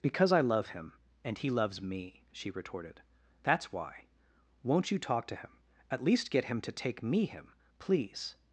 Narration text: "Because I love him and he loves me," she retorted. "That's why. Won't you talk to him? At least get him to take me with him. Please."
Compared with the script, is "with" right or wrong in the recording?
wrong